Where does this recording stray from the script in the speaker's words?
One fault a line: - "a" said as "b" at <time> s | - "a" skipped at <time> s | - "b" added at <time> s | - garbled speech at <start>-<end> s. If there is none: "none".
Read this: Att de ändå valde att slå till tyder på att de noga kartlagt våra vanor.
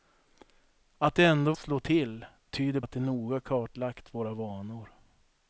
- "valde" skipped at 1.5 s
- "på" skipped at 2.8 s